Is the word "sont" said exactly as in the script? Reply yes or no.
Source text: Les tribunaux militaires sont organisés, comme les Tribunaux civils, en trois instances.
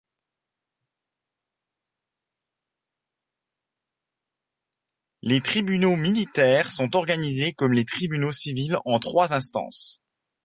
yes